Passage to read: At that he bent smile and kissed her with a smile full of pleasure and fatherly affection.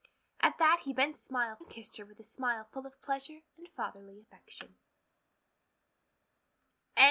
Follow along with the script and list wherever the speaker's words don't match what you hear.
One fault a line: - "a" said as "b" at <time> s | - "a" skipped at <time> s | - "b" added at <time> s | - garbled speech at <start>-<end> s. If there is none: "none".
none